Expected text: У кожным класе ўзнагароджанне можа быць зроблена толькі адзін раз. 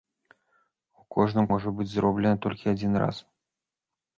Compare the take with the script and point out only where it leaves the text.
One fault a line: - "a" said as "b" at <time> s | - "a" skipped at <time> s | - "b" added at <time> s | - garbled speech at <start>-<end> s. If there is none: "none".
- "класе ўзнагароджанне" skipped at 1.4 s